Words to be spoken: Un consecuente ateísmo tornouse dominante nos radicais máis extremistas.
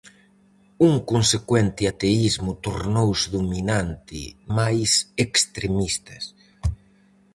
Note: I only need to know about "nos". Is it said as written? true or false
false